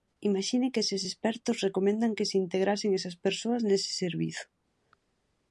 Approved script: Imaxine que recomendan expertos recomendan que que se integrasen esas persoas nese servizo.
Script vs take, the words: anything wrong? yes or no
yes